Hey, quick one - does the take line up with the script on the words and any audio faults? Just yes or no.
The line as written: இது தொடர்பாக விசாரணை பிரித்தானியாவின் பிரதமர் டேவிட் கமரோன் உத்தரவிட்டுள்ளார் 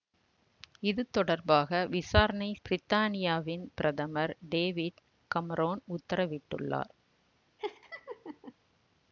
no